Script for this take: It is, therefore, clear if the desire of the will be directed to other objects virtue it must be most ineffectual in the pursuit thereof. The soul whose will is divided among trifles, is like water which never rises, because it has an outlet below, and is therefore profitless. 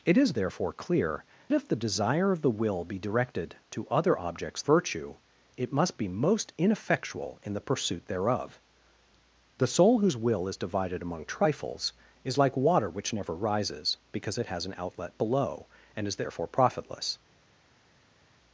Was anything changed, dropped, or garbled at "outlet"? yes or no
no